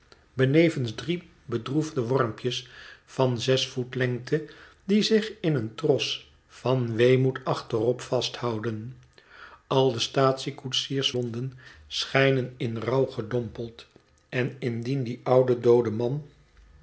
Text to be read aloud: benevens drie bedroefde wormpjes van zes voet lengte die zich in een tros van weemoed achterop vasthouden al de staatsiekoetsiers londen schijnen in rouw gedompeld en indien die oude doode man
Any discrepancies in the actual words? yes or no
no